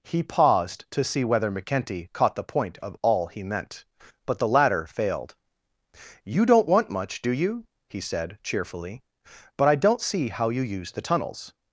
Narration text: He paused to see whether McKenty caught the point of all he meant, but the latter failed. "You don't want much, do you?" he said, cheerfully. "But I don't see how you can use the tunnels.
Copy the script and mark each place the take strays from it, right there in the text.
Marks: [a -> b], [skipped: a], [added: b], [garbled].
He paused to see whether McKenty caught the point of all he meant, but the latter failed. "You don't want much, do you?" he said, cheerfully. "But I don't see how you [skipped: can] use the tunnels.